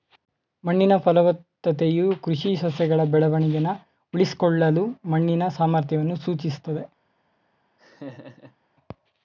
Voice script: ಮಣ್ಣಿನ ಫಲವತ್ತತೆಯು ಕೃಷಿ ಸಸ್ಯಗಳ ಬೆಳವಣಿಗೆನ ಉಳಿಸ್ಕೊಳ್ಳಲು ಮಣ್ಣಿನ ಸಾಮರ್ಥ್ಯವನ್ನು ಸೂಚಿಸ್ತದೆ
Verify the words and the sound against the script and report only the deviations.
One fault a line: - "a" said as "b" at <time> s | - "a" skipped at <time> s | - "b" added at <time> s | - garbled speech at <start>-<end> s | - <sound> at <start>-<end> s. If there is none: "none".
- laugh at 7.8-8.6 s